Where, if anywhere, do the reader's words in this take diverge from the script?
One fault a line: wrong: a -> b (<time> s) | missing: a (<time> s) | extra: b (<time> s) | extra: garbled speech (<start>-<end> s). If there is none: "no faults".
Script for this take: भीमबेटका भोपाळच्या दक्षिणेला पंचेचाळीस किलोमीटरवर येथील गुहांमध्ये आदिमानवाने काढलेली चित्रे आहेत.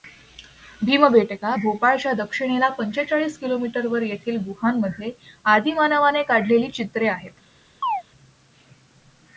no faults